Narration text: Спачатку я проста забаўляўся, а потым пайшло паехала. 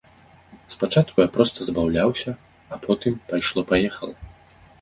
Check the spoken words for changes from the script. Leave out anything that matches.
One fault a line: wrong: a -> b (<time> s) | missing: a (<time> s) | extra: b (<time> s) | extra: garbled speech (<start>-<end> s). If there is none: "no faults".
no faults